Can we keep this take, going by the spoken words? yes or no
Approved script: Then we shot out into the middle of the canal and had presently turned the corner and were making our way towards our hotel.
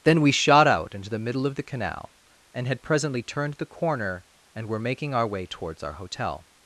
yes